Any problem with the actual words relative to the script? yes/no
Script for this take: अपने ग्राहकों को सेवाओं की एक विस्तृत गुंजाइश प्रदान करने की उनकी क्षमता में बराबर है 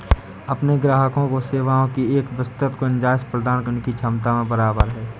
yes